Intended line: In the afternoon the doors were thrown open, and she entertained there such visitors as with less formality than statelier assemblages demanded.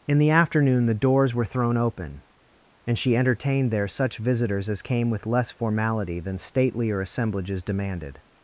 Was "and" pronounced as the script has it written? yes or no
yes